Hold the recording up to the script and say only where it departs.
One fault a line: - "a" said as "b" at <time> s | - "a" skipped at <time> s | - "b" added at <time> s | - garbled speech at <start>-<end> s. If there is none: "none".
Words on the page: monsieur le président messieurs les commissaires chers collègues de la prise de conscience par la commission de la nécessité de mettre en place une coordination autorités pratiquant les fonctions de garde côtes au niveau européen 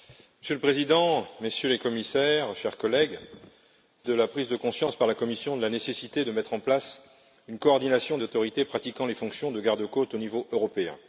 none